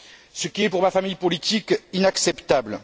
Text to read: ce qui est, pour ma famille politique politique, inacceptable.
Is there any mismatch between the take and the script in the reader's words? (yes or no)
yes